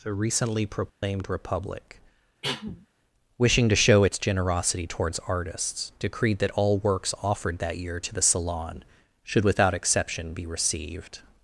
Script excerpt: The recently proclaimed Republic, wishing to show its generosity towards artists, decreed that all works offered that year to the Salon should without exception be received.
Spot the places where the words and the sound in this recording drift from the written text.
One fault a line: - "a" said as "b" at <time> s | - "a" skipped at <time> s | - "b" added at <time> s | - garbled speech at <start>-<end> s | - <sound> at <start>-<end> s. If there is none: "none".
- dropout at 0.9-1.0 s
- cough at 2.4-2.9 s